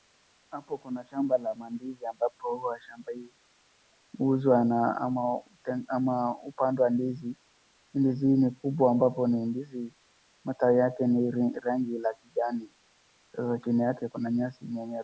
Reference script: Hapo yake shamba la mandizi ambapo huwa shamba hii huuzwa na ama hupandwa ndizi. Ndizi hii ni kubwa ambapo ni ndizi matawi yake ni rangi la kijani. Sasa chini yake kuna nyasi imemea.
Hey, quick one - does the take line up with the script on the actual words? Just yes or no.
no